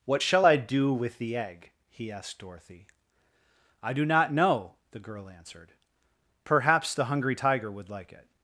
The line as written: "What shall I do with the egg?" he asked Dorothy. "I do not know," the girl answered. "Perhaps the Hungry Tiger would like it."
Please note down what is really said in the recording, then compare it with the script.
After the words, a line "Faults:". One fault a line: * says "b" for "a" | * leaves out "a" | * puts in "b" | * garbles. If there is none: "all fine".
"What shall I do with the egg?" he asked Dorothy. "I do not know," the girl answered. "Perhaps the Hungry Tiger would like it."
Faults:
all fine